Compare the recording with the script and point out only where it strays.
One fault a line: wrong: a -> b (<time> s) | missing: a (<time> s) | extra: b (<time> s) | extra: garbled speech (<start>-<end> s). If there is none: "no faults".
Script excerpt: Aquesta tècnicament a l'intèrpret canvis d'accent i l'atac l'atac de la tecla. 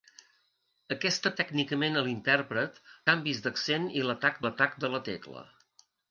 no faults